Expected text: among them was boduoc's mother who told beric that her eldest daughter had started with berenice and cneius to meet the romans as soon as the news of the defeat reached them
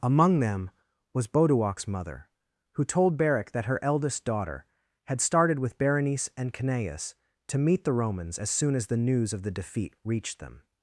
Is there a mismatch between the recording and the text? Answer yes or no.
no